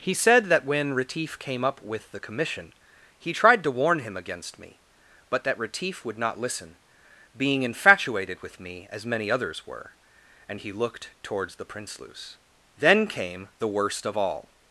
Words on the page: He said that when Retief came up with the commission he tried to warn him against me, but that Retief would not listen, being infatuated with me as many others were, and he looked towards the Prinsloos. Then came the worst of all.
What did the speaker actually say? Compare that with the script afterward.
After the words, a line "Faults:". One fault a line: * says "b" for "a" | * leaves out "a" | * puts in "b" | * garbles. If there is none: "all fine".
He said that when Retief came up with the commission he tried to warn him against me, but that Retief would not listen, being infatuated with me as many others were, and he looked towards the Prinsloos. Then came the worst of all.
Faults:
all fine